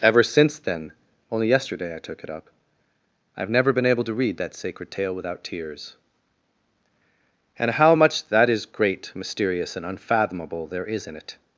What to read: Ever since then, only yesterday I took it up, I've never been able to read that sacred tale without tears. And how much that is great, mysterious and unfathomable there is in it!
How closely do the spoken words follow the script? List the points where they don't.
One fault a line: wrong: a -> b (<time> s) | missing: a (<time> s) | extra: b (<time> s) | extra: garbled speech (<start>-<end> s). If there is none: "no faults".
no faults